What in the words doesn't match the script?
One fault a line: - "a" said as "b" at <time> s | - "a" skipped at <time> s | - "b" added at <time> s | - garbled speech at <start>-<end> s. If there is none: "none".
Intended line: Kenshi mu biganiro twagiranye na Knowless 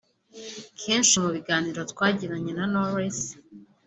none